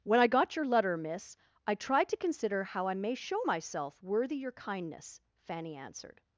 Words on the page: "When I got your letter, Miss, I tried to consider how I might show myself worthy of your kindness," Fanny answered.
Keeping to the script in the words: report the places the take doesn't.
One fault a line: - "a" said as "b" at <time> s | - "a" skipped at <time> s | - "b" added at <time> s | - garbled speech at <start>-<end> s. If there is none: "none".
- "might" said as "may" at 2.9 s
- "of" skipped at 4.4 s